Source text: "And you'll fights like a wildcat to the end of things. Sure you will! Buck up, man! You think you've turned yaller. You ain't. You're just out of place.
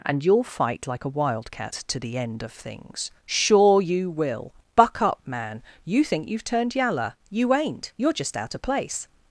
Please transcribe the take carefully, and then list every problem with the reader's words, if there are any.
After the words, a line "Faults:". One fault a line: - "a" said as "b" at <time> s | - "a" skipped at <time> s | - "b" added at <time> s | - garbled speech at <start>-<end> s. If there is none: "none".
"And you'll fight like a wildcat to the end of things. Sure you will! Buck up, man! You think you've turned yaller. You ain't. You're just out of place.
Faults:
- "fights" said as "fight" at 0.4 s